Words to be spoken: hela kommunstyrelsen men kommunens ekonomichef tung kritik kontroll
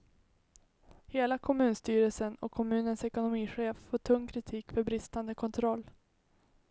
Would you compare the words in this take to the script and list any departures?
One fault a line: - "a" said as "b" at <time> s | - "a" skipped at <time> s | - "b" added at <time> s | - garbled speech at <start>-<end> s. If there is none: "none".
- "men" said as "och" at 2.4 s
- "får" added at 3.7 s
- "för bristande" added at 4.7 s